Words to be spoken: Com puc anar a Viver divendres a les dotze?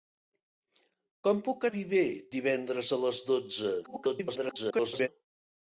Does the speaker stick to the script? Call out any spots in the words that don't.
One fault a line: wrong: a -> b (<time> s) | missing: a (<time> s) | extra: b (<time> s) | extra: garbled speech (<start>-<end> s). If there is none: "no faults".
missing: anar (1.7 s)
extra: garbled speech (3.8-5.1 s)